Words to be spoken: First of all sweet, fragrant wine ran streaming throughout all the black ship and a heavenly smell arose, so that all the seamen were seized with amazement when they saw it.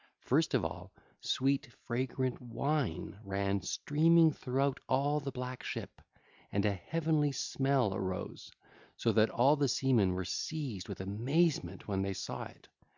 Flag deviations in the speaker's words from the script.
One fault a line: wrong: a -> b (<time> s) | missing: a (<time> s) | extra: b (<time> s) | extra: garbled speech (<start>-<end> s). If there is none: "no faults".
no faults